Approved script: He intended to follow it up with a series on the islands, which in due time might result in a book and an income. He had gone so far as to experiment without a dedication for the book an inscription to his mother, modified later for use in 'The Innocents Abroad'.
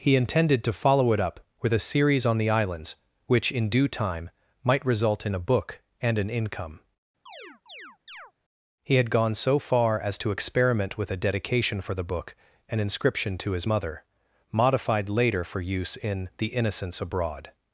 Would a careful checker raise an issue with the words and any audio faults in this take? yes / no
yes